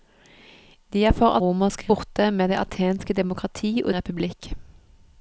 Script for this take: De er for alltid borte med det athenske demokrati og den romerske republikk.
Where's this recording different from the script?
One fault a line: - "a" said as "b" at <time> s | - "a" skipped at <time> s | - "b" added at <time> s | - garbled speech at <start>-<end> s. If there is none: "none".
- "alltid" said as "romerske" at 1.4 s
- "den romerske" skipped at 4.0 s